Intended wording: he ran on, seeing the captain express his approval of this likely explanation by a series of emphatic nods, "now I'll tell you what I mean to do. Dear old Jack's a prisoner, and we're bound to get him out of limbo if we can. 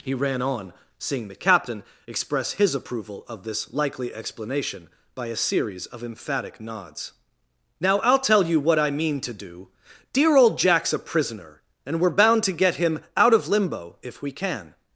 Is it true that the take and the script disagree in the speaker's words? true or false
false